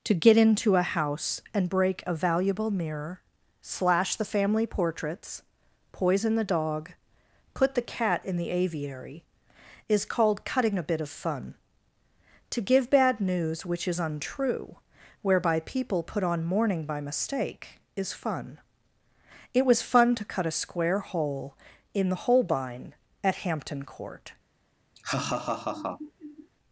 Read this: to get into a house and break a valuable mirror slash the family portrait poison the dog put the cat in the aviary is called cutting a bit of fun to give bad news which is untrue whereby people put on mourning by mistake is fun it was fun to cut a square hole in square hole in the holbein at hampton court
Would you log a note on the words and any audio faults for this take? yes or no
yes